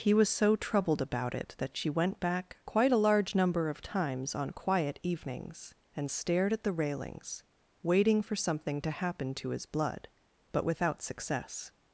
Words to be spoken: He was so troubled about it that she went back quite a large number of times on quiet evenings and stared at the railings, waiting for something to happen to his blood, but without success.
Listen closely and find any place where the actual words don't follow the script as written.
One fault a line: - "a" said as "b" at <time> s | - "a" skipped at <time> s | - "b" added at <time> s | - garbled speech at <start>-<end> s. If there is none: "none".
none